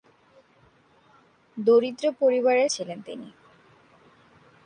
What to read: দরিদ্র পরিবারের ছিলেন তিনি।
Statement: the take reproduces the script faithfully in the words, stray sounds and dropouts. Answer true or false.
true